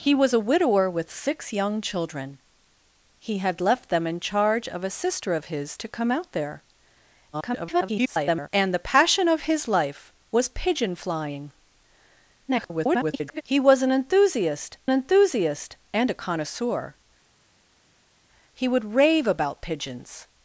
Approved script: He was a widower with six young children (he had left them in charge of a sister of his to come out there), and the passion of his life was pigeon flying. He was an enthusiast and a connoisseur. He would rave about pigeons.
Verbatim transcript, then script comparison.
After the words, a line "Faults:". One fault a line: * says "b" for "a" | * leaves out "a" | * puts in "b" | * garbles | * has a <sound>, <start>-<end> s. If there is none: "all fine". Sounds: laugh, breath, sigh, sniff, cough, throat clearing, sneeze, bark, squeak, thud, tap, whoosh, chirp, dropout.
He was a widower with six young children (he had left them in charge of a sister of his to come out there), [garbled] and the passion of his life was pigeon flying. [garbled] He was an enthusiast enthusiast and a connoisseur. He would rave about pigeons.
Faults:
* garbles
* garbles
* puts in "enthusiast"